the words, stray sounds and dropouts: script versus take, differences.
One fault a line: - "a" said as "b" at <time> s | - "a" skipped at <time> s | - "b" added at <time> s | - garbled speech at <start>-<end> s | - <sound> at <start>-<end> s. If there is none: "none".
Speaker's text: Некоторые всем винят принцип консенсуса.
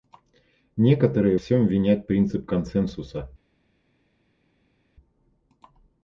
none